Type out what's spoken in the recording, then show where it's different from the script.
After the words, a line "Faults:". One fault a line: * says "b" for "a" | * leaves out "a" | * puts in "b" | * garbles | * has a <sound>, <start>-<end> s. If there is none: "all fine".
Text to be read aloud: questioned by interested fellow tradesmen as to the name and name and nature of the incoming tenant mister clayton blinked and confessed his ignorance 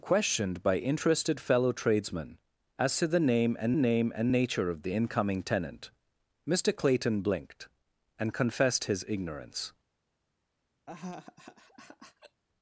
questioned by interested fellow tradesmen as to the name and name and nature of the incoming tenant mister clayton blinked and confessed his ignorance
Faults:
* has a laugh, 10.9-12.4 s